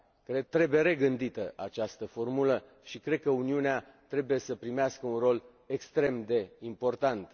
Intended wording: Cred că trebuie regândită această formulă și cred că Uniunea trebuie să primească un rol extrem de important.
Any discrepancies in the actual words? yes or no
yes